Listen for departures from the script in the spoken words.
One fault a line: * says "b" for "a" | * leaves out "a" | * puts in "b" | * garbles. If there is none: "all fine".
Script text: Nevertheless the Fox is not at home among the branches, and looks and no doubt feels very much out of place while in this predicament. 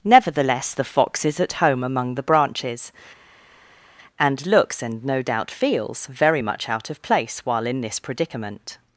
* leaves out "not"